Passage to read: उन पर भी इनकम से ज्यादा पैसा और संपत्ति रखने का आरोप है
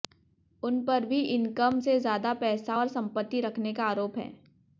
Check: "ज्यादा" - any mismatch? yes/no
no